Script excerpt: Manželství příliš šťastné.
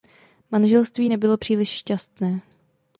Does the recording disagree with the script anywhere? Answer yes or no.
yes